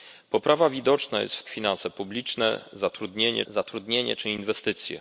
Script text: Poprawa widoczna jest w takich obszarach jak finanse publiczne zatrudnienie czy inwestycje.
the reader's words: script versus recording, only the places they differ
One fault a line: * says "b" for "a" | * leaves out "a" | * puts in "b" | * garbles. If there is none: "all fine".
* leaves out "takich obszarach jak"
* puts in "zatrudnienie"